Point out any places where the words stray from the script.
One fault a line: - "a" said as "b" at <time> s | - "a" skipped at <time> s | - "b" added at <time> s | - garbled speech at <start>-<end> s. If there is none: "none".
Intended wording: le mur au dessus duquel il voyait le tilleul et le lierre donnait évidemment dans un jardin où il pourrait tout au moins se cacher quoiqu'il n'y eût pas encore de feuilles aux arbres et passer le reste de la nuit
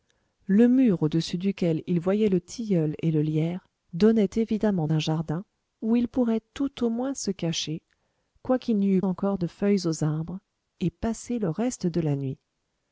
- "dans" skipped at 4.9 s
- "pas" skipped at 9.0 s